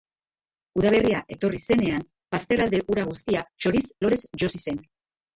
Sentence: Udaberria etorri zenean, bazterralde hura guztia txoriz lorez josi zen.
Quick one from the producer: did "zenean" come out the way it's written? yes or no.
yes